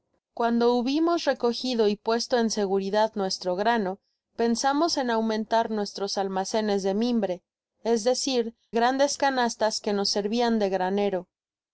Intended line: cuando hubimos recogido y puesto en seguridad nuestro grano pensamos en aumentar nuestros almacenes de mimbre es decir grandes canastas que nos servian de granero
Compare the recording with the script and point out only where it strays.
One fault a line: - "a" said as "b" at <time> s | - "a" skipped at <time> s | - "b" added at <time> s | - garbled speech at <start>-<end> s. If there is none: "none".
none